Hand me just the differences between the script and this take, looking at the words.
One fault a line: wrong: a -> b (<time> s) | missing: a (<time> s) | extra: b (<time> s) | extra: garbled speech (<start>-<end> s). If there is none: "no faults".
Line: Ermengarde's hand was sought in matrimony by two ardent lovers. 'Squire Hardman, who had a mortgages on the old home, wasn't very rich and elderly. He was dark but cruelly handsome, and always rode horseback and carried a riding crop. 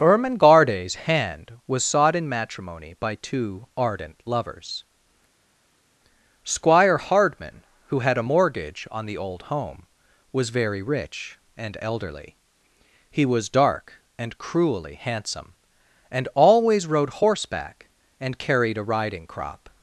wrong: mortgages -> mortgage (8.3 s)
wrong: wasn't -> was (10.3 s)
wrong: but -> and (14.2 s)